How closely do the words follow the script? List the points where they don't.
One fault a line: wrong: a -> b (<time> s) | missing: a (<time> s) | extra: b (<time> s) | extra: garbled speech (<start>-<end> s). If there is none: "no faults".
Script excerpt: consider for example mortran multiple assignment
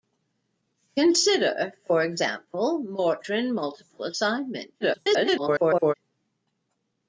extra: garbled speech (4.8-5.9 s)